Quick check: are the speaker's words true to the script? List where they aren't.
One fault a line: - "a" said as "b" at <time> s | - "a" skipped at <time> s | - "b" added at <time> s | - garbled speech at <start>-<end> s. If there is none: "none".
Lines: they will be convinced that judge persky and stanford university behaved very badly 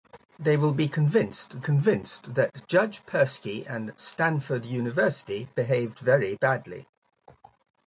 - "convinced" added at 1.6 s